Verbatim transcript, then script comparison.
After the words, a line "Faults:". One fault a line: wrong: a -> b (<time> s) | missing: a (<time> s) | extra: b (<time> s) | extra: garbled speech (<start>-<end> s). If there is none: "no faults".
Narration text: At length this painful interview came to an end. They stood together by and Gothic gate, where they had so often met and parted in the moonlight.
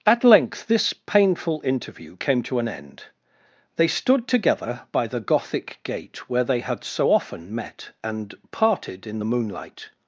At length this painful interview came to an end. They stood together by the Gothic gate, where they had so often met and parted in the moonlight.
Faults:
wrong: and -> the (5.0 s)